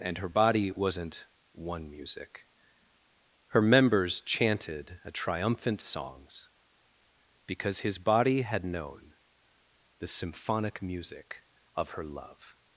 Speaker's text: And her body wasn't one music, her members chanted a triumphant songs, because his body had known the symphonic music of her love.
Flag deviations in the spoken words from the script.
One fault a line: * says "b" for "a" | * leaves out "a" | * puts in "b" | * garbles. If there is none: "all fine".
all fine